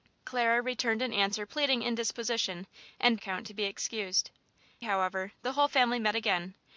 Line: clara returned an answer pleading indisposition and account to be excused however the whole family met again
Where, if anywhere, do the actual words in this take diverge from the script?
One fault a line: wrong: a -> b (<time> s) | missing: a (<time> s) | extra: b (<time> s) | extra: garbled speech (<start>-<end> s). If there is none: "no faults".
no faults